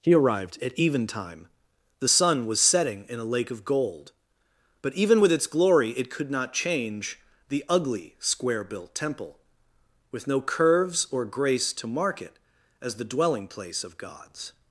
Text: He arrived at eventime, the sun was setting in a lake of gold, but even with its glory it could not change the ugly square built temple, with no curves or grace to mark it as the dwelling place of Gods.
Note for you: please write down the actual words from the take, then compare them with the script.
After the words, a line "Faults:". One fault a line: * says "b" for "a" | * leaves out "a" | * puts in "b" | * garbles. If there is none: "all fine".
He arrived at eventime, the sun was setting in a lake of gold, but even with its glory it could not change the ugly square built temple, with no curves or grace to mark it as the dwelling place of Gods.
Faults:
all fine